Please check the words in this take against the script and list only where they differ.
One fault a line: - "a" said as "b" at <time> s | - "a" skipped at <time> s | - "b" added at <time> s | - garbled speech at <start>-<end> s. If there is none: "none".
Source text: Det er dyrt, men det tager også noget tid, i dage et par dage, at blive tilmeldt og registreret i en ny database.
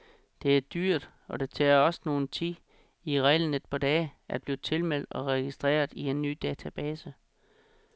- "men" said as "og" at 1.3 s
- "dage" said as "reglen" at 3.2 s